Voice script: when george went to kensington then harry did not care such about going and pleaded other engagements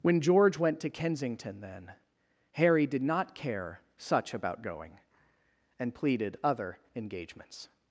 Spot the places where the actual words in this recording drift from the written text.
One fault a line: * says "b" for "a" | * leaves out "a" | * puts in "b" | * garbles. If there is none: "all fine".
all fine